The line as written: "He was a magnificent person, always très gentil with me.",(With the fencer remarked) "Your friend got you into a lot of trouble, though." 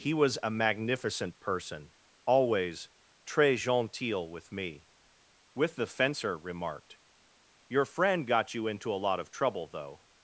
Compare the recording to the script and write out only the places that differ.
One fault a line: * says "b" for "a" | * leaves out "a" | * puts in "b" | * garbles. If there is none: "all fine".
all fine